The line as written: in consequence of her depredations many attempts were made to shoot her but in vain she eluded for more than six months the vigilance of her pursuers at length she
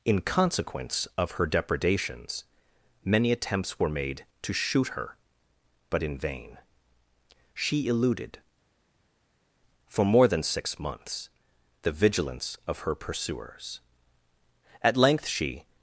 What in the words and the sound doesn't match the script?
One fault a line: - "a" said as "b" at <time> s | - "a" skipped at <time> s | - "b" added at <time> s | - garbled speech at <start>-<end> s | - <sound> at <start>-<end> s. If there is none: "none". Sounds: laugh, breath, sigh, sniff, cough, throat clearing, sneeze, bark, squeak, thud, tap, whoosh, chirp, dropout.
none